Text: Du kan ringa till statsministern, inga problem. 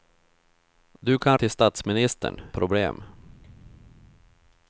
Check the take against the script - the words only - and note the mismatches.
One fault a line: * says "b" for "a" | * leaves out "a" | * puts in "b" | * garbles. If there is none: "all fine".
* leaves out "ringa"
* leaves out "inga"